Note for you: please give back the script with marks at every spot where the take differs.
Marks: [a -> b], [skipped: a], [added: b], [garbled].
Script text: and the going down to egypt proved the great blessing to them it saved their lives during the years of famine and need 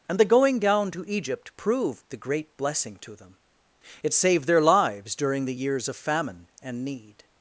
and the going down to egypt proved the great blessing to them it saved their lives during the years of famine and need